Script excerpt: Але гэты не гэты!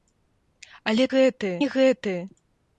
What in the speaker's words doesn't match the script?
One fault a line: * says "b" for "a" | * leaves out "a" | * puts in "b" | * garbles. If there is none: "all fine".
all fine